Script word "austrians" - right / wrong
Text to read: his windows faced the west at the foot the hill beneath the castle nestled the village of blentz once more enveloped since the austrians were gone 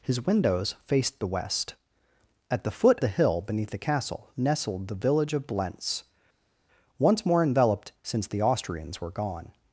right